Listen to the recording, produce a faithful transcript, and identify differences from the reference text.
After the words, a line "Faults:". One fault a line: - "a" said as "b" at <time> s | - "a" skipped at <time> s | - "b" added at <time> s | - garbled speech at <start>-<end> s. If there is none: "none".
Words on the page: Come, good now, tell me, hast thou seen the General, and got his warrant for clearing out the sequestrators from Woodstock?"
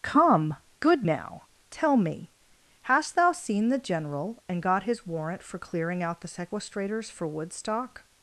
Come, good now, tell me, hast thou seen the General, and got his warrant for clearing out the sequestrators for Woodstock?"
Faults:
- "from" said as "for" at 7.1 s